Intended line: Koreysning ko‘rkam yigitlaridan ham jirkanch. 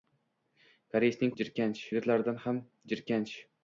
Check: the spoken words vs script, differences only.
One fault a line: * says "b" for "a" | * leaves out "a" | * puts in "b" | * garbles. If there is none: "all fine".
* says "jirkanch" for "ko‘rkam"